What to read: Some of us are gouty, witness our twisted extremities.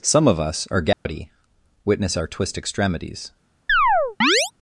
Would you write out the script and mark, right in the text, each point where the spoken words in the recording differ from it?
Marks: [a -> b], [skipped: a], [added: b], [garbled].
Some of us are gouty, witness our [twisted -> twist] extremities.